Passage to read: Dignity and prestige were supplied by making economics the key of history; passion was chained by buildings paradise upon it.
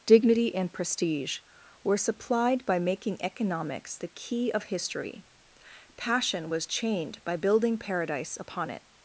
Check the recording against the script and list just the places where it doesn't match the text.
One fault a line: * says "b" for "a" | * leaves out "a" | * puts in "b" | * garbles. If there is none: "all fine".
* says "building" for "buildings"